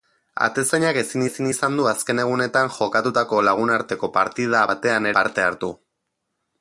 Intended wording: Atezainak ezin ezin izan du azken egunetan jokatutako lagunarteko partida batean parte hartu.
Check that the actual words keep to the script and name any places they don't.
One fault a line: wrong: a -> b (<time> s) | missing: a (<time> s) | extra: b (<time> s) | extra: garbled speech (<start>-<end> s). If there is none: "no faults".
no faults